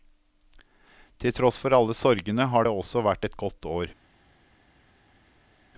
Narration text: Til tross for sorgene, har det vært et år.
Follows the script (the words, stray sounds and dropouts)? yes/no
no